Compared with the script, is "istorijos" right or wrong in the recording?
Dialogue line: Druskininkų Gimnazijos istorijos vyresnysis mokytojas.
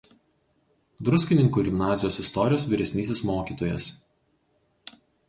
right